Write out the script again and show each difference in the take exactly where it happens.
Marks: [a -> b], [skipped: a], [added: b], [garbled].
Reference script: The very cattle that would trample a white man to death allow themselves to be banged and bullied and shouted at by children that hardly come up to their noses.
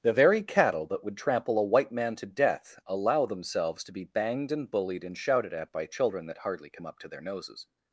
The very cattle that would trample a white man to death allow themselves to be banged and bullied and shouted at by children that hardly come up to their noses.